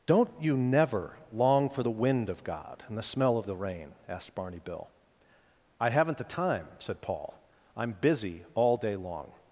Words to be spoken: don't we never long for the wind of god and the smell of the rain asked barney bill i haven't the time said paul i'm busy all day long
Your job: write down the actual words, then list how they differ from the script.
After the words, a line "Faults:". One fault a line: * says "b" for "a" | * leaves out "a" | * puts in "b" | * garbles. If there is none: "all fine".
don't you never long for the wind of god and the smell of the rain asked barney bill i haven't the time said paul i'm busy all day long
Faults:
* says "you" for "we"